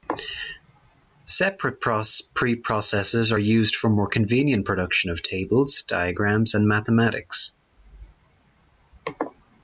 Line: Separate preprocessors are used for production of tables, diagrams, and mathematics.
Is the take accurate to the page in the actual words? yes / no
no